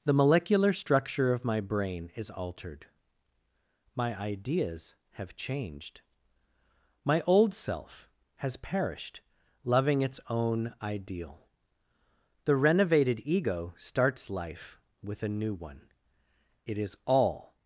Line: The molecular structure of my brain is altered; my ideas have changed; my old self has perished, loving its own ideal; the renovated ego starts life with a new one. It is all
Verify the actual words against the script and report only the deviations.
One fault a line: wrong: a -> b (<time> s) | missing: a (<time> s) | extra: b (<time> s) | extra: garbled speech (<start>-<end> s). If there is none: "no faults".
no faults